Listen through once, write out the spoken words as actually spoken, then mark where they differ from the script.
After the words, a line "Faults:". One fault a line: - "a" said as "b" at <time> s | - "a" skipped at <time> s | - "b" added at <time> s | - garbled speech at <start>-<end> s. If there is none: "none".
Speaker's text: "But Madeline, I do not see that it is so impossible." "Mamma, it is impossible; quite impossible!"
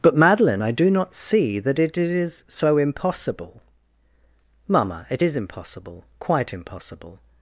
"But Madeline, I do not see that it is so impossible." "Mamma, it is impossible; quite impossible!"
Faults:
none